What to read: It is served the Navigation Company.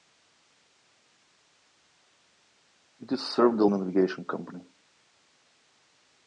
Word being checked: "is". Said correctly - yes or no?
yes